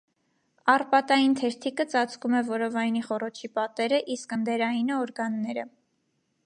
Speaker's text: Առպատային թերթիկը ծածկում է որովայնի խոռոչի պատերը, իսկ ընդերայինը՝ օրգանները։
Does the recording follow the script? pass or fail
pass